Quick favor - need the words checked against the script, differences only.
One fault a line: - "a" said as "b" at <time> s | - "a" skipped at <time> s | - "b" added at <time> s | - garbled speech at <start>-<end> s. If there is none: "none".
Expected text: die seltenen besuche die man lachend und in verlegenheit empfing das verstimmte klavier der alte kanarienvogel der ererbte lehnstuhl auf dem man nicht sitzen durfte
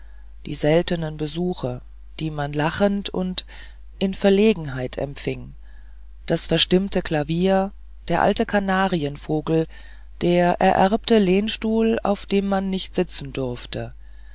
none